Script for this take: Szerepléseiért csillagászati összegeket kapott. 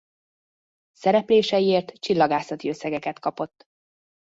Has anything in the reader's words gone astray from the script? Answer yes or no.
no